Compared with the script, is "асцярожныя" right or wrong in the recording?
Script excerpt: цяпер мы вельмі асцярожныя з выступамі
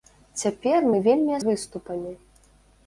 wrong